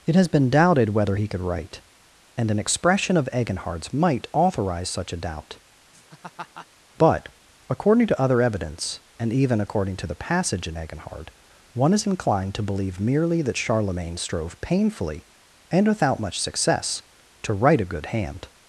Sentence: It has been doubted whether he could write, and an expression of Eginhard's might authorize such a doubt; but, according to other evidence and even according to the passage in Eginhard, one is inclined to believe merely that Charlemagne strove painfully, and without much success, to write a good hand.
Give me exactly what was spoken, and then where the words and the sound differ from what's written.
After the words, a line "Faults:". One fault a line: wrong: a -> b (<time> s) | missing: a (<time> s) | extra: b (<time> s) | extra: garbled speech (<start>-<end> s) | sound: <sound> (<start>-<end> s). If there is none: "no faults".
It has been doubted whether he could write, and an expression of Eginhard's might authorize such a doubt; but, according to other evidence and even according to the passage in Eginhard, one is inclined to believe merely that Charlemagne strove painfully, and without much success, to write a good hand.
Faults:
sound: laugh (5.9-6.7 s)